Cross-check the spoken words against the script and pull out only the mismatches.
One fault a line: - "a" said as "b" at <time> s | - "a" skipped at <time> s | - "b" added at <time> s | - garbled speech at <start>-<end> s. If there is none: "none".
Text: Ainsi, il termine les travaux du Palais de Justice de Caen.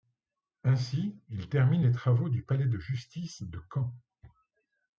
none